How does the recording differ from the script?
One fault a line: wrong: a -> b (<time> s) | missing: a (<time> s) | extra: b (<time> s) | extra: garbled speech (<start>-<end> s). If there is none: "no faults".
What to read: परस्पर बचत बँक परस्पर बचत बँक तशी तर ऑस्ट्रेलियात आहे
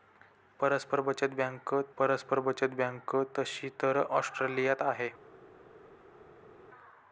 no faults